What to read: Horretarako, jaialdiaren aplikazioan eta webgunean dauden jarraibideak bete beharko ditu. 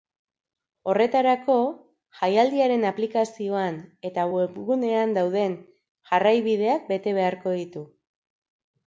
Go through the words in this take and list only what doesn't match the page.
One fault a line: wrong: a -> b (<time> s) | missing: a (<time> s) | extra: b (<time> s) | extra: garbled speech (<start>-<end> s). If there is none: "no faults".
no faults